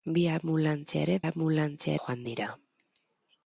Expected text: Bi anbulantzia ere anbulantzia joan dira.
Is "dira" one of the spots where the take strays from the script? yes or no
no